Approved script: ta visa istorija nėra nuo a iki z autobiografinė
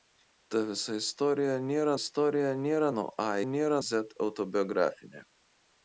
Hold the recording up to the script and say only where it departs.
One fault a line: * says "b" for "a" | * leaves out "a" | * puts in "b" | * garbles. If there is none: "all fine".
* puts in "istorija nėra"
* says "nėra" for "iki"